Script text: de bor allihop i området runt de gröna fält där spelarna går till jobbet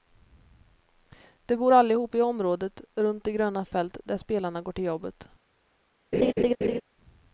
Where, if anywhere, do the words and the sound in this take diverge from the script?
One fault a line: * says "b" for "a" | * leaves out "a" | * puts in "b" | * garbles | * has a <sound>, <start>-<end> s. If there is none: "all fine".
* has a laugh, 6.1-6.8 s